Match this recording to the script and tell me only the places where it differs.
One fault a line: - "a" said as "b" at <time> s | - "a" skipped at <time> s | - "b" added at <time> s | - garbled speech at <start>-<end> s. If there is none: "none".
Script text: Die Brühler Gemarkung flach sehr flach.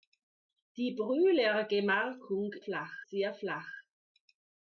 none